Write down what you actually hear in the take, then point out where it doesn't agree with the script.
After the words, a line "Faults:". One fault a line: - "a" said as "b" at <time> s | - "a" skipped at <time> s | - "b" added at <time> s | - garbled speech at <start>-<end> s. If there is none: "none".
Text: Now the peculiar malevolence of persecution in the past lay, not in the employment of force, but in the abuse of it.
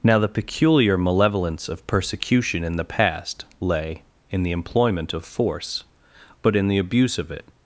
Now the peculiar malevolence of persecution in the past lay, in the employment of force, but in the abuse of it.
Faults:
- "not" skipped at 4.0 s